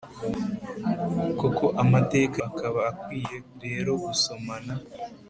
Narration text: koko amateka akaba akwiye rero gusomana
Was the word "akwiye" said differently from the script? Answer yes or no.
no